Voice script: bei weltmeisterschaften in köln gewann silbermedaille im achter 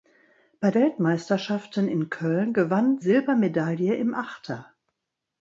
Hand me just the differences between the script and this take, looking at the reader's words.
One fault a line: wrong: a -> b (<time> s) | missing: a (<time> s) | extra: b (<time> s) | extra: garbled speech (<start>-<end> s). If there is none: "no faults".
no faults